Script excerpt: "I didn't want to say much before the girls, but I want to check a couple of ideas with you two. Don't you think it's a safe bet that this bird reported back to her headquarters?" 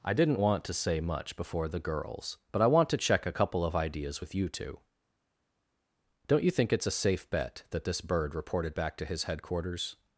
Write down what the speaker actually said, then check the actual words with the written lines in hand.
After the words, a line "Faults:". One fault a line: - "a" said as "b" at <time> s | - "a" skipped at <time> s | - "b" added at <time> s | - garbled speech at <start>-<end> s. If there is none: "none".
"I didn't want to say much before the girls, but I want to check a couple of ideas with you two. Don't you think it's a safe bet that this bird reported back to his headquarters?"
Faults:
- "her" said as "his" at 9.1 s